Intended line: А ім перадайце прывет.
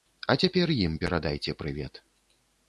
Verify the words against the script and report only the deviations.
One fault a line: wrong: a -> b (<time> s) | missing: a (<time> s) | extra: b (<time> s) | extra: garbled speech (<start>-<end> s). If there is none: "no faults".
extra: цяпер (0.4 s)